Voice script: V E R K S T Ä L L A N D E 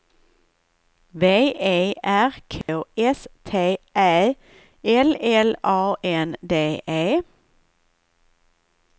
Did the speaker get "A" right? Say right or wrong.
right